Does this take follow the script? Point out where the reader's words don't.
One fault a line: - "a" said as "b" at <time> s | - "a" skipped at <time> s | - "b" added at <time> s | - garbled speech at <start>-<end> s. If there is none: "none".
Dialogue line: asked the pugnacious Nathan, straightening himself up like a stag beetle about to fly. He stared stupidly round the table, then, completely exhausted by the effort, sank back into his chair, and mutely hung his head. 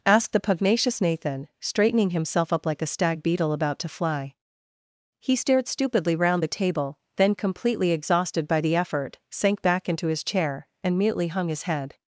none